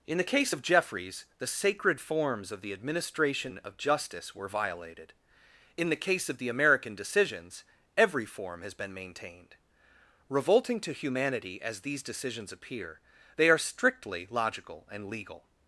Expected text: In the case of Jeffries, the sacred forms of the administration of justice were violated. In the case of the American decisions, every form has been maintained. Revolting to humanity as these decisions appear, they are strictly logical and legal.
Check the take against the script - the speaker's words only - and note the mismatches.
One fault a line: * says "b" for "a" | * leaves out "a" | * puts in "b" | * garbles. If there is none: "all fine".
all fine